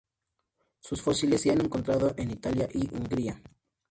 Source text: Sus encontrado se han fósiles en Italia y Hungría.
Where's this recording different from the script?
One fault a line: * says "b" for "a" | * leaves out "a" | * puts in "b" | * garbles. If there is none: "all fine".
* says "fósiles" for "encontrado"
* says "encontrado" for "fósiles"